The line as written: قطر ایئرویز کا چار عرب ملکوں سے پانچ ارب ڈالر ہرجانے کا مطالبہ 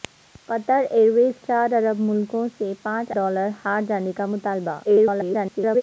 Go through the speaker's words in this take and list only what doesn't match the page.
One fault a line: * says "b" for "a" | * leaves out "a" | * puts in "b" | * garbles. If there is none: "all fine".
* leaves out "کا"
* leaves out "ارب"
* garbles